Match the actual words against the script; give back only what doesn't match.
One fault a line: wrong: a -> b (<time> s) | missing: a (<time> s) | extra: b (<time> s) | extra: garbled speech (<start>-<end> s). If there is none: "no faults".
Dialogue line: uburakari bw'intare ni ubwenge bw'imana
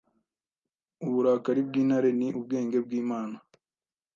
no faults